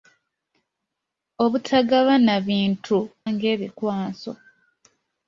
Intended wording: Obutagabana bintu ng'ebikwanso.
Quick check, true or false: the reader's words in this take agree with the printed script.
true